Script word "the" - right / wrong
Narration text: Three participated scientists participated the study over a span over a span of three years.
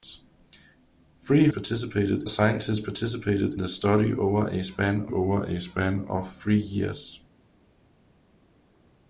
right